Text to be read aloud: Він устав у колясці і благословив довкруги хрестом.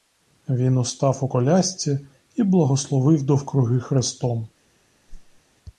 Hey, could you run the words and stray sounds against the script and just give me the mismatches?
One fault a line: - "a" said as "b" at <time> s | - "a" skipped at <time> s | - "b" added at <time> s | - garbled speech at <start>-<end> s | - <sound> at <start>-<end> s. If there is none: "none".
- whoosh at 5.1-5.4 s